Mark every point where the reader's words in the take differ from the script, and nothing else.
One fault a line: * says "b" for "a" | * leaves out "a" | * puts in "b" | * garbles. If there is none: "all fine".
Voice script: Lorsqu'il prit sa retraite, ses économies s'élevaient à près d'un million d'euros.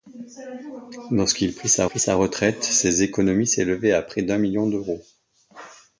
* puts in "prit sa"